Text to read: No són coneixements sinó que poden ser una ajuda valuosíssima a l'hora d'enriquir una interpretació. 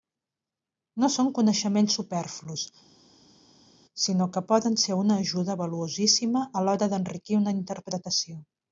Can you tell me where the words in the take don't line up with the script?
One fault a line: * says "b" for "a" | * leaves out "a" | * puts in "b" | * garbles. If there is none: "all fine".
* puts in "superflus"